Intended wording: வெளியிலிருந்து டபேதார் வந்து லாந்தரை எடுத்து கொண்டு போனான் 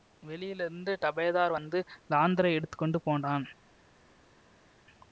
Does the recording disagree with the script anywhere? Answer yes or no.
no